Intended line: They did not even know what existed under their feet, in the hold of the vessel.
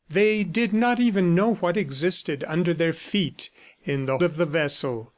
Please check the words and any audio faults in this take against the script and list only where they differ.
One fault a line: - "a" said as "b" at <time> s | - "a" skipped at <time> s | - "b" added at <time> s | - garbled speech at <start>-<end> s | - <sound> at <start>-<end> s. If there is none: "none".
- "hold" skipped at 4.2 s